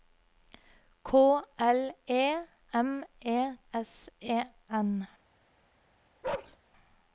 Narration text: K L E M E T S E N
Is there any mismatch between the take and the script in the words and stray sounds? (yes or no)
yes